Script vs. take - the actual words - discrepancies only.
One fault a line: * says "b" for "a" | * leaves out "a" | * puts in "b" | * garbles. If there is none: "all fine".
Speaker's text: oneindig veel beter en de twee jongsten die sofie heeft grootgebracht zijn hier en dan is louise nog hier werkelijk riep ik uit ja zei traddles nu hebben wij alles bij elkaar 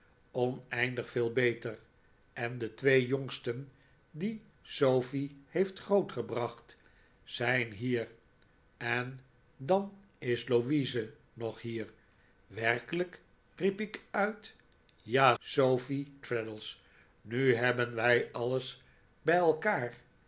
* says "sofie" for "zei"